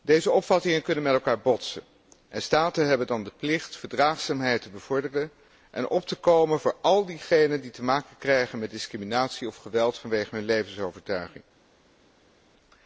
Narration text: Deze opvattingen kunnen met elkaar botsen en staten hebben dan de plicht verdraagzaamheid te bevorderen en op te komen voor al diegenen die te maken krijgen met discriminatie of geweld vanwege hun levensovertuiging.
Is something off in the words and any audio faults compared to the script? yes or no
no